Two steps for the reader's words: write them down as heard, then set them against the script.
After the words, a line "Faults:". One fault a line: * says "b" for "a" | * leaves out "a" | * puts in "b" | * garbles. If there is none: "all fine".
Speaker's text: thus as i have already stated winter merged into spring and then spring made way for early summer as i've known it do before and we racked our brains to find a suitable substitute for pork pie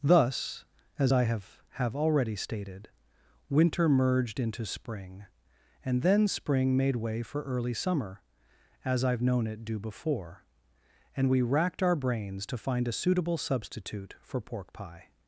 thus as i have have already stated winter merged into spring and then spring made way for early summer as i've known it do before and we racked our brains to find a suitable substitute for pork pie
Faults:
* puts in "have"